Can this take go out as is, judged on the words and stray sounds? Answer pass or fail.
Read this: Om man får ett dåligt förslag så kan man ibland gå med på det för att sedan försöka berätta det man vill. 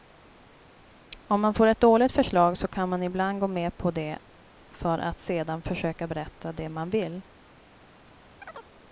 fail